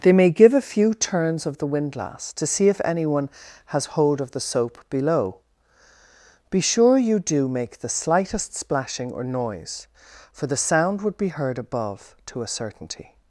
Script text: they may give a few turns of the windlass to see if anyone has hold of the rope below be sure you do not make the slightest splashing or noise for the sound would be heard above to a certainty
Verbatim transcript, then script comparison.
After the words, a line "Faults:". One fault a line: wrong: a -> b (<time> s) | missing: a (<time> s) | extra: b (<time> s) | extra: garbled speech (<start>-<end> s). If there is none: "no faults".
they may give a few turns of the windlass to see if anyone has hold of the soap below be sure you do make the slightest splashing or noise for the sound would be heard above to a certainty
Faults:
wrong: rope -> soap (4.4 s)
missing: not (7.5 s)